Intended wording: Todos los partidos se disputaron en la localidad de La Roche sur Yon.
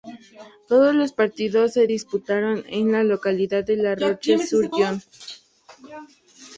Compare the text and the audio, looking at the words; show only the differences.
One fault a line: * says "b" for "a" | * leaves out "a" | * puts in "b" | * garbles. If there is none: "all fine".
all fine